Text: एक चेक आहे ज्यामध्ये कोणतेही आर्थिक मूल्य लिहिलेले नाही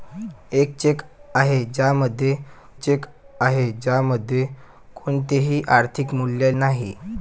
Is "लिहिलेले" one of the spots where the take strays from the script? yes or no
yes